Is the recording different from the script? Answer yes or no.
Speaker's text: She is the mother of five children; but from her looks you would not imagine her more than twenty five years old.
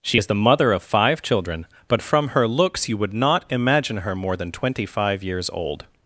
no